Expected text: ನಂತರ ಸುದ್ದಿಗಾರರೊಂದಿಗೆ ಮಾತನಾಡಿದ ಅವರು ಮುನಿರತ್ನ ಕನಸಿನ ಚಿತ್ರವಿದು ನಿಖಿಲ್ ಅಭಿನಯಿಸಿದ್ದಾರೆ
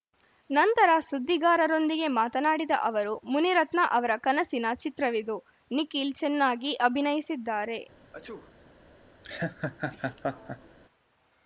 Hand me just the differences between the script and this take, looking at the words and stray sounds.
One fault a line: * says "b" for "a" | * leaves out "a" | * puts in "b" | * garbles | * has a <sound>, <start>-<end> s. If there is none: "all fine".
* puts in "ಅವರ"
* puts in "ಚೆನ್ನಾಗಿ"
* has a sneeze, 8.1-8.5 s
* has a laugh, 9.2-10.8 s